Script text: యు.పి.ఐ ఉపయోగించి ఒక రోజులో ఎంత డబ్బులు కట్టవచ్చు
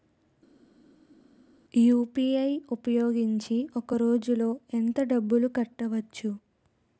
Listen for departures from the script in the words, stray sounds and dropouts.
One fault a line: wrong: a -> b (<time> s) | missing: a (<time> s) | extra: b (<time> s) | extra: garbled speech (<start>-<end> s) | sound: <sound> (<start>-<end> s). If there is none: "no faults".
no faults